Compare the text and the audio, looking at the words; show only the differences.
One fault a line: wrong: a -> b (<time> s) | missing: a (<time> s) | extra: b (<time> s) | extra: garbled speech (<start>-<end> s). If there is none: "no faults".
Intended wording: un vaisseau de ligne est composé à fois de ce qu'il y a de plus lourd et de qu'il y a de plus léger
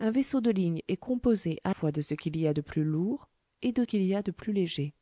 no faults